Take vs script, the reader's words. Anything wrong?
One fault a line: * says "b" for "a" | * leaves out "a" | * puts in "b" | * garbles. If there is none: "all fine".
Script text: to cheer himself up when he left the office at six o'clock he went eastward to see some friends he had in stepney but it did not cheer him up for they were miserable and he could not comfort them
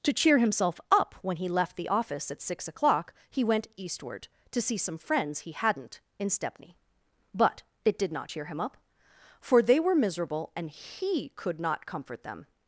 * says "hadn't" for "had"